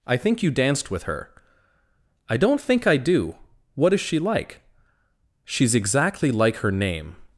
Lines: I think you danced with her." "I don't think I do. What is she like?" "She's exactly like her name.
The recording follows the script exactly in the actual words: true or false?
true